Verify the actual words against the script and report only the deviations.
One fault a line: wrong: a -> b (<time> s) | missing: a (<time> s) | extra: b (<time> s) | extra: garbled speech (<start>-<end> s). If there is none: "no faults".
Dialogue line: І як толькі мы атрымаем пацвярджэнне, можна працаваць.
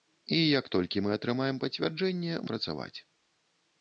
missing: можна (2.4 s)